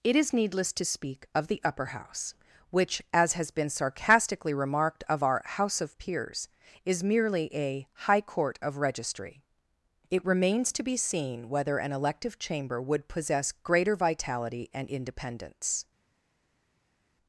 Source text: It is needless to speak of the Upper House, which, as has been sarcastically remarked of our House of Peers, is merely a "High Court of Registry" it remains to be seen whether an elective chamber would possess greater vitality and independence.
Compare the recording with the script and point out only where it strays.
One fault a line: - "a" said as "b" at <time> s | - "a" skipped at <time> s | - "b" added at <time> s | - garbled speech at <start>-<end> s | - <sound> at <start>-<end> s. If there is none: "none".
none